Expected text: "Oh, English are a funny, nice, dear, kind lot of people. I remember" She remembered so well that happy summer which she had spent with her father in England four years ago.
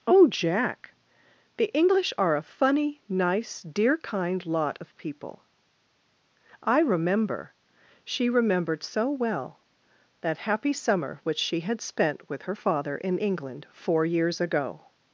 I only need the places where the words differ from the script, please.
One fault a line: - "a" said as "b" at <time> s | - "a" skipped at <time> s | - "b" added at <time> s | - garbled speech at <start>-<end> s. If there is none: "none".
- "Jack The" added at 0.3 s